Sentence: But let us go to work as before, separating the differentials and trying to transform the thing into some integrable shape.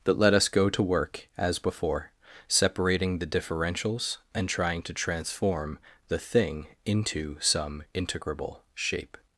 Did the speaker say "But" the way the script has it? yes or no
no